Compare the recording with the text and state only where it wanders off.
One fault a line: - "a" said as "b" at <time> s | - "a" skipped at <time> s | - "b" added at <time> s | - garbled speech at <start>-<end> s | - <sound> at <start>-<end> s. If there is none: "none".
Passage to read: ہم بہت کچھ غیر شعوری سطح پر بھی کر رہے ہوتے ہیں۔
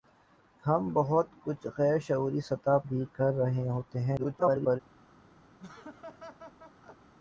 - "پر" skipped at 2.8 s
- garbled speech at 4.2-4.8 s
- laugh at 5.6-7.1 s